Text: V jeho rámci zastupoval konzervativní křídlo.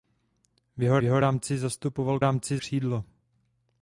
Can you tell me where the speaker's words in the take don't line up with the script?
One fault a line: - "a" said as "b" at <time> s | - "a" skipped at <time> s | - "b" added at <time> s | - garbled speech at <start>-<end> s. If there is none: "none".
- "jeho" added at 1.0 s
- "konzervativní" said as "rámci" at 2.2 s